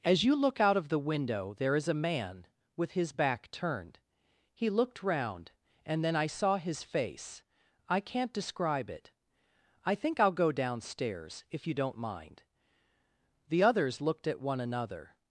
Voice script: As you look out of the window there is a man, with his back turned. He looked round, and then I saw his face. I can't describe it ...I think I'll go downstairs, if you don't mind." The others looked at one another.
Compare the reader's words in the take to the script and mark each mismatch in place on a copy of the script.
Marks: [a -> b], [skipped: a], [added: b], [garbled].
As you look out of the window there is a man, with his back turned. He looked round, and then I saw his face. I can't describe it ...I think I'll go downstairs, if you don't mind." The others looked at one another.